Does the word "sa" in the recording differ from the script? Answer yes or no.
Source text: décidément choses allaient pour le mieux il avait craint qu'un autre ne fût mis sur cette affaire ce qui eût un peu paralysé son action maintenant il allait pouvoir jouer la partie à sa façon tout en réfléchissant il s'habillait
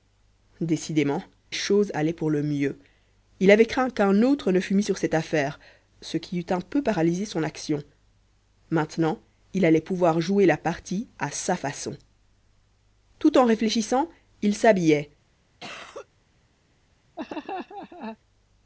no